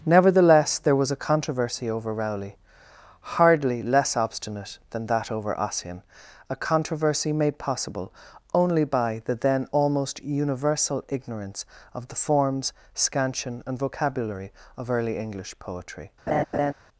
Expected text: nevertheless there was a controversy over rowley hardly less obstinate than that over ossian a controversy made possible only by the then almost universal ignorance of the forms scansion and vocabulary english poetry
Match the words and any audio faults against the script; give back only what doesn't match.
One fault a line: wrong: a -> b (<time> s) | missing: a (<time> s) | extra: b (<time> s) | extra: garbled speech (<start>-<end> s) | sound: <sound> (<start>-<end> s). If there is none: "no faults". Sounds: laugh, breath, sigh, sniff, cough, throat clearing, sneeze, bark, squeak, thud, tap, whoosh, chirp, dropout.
extra: of early (14.7 s)
sound: laugh (16.3-16.7 s)